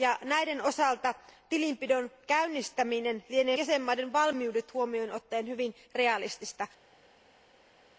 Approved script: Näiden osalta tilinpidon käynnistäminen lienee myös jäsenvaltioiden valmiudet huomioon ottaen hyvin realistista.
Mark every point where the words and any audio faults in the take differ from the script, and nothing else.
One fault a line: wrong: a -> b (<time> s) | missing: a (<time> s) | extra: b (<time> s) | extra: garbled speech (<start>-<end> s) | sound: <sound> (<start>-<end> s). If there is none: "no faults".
missing: myös (3.6 s)